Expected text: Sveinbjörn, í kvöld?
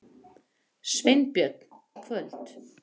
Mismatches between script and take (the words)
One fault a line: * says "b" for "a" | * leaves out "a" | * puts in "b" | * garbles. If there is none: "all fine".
all fine